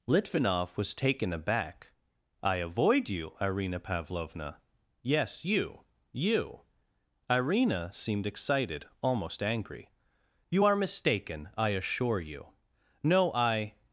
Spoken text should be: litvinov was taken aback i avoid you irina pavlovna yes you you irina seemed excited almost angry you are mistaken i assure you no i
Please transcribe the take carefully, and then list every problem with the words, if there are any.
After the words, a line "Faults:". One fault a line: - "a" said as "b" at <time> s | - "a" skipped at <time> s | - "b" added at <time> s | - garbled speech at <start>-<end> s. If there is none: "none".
litvinov was taken aback i avoid you irina pavlovna yes you you irina seemed excited almost angry you are mistaken i assure you no i
Faults:
none